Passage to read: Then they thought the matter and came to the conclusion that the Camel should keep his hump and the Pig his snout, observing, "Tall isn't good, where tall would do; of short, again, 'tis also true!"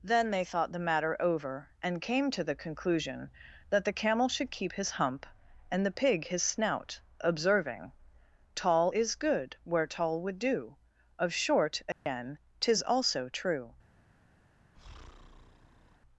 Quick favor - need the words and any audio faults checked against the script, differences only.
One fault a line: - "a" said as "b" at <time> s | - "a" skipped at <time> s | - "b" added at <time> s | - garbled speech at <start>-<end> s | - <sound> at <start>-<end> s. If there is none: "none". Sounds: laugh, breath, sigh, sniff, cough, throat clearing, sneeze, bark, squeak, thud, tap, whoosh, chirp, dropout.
- "over" added at 1.2 s
- "isn't" said as "is" at 8.9 s
- dropout at 11.9-12.1 s
- breath at 14.7-16.0 s